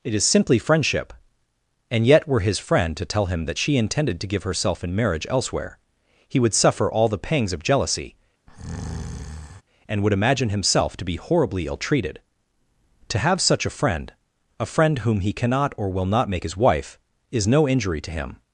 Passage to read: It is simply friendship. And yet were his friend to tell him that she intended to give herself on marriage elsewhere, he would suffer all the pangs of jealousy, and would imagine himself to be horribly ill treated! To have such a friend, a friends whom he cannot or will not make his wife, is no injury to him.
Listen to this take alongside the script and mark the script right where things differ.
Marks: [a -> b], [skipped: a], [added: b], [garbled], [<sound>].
It is simply friendship. And yet were his friend to tell him that she intended to give herself [on -> in] marriage elsewhere, he would suffer all the pangs of jealousy, [breath] and would imagine himself to be horribly ill treated! To have such a friend, a [friends -> friend] whom he cannot or will not make his wife, is no injury to him.